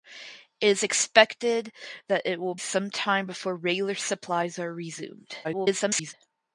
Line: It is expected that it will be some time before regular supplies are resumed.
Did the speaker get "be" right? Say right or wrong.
wrong